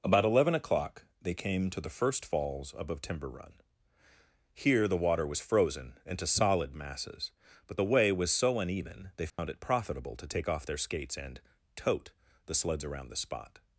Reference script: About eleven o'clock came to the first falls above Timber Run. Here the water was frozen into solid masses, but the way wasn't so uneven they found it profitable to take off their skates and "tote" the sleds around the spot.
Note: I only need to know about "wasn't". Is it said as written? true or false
false